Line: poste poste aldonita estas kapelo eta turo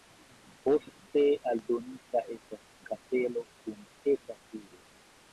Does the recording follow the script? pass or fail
fail